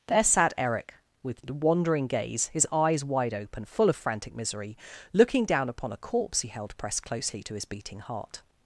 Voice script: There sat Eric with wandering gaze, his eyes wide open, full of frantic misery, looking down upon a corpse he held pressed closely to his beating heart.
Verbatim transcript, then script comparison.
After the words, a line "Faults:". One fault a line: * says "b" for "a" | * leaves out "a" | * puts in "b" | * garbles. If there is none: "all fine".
There sat Eric with wandering gaze, his eyes wide open, full of frantic misery, looking down upon a corpse he held pressed closely to his beating heart.
Faults:
all fine